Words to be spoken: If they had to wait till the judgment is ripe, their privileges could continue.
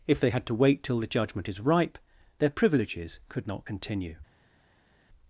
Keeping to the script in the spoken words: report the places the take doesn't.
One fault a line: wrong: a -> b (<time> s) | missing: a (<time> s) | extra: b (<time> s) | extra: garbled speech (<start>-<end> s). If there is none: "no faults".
extra: not (3.5 s)